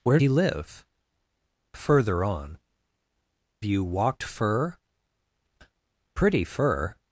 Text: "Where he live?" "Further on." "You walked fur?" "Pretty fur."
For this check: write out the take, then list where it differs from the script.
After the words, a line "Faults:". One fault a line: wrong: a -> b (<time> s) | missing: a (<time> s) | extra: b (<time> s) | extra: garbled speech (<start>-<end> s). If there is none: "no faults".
"Where he live?" "Further on." "You walked fur?" "Pretty fur."
Faults:
no faults